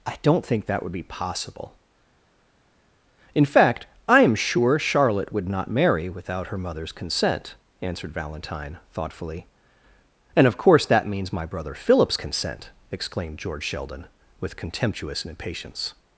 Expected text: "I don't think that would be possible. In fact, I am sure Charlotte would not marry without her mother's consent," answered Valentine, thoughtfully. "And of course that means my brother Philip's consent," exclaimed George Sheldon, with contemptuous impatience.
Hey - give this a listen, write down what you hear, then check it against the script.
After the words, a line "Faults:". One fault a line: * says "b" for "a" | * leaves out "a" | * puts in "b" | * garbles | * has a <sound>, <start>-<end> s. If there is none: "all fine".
"I don't think that would be possible. In fact, I am sure Charlotte would not marry without her mother's consent," answered Valentine, thoughtfully. "And of course that means my brother Philip's consent," exclaimed George Sheldon, with contemptuous impatience.
Faults:
all fine